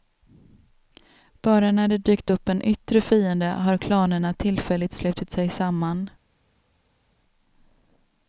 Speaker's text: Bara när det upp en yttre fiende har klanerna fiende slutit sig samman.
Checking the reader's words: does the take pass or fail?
fail